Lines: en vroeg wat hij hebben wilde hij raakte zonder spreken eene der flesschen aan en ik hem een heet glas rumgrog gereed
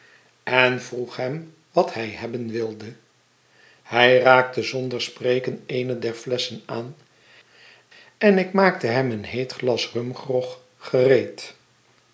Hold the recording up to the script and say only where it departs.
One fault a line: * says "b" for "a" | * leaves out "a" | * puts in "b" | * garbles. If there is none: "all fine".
* puts in "hem"
* puts in "maakte"